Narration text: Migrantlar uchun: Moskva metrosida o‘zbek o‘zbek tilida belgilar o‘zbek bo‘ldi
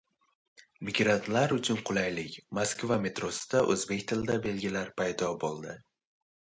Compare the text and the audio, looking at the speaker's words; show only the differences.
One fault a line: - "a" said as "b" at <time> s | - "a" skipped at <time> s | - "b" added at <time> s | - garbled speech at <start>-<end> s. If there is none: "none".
- "qulaylik" added at 1.9 s
- "o‘zbek" skipped at 4.1 s
- "o‘zbek" said as "paydo" at 5.0 s